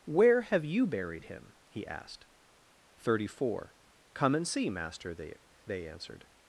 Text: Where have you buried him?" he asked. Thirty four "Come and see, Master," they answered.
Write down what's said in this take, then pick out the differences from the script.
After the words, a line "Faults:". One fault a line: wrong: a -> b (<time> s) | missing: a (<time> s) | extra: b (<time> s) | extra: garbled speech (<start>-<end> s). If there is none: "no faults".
Where have you buried him?" he asked. Thirty four "Come and see, Master," they they answered.
Faults:
extra: they (5.7 s)